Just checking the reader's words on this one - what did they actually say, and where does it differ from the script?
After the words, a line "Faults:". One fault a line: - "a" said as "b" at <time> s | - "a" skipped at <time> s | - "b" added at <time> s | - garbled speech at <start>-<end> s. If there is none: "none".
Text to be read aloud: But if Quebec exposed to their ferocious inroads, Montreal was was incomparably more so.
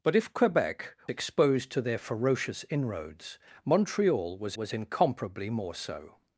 But if Quebec exposed to their ferocious inroads, Montreal was was incomparably more so.
Faults:
none